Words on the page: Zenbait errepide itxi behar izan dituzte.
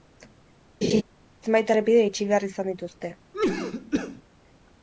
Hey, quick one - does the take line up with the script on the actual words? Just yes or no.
yes